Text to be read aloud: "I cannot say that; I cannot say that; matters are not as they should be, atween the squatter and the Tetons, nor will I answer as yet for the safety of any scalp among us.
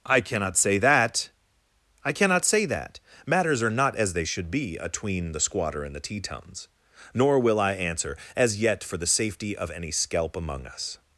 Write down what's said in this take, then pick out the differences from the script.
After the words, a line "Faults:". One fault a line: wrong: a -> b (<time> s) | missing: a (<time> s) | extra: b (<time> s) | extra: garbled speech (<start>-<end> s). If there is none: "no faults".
"I cannot say that; I cannot say that; matters are not as they should be, atween the squatter and the Tetons, nor will I answer as yet for the safety of any scalp among us.
Faults:
no faults